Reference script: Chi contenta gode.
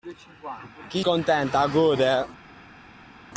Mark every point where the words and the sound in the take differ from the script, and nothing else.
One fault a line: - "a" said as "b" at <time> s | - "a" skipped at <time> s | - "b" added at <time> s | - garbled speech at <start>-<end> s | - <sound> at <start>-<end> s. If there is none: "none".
none